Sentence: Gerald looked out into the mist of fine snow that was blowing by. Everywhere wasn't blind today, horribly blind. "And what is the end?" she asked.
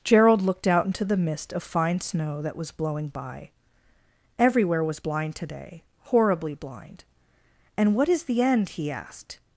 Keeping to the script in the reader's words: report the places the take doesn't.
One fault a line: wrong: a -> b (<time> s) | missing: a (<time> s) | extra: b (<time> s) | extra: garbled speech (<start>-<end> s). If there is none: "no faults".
wrong: wasn't -> was (4.8 s)
wrong: she -> he (8.7 s)